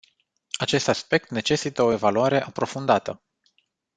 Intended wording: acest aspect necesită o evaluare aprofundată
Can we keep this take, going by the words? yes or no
yes